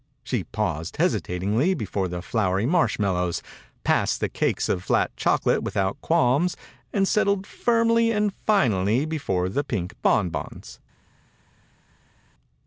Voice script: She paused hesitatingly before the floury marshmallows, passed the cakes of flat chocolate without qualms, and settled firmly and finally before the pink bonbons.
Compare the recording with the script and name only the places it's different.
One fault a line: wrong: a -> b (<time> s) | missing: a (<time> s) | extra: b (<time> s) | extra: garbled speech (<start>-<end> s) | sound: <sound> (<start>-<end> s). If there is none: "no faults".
no faults